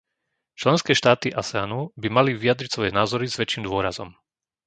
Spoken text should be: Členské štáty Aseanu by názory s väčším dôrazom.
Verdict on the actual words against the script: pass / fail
fail